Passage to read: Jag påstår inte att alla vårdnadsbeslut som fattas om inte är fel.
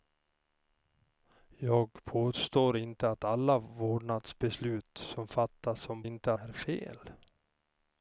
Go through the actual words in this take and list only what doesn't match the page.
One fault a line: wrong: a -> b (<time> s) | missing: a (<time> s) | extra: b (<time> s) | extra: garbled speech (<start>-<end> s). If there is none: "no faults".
no faults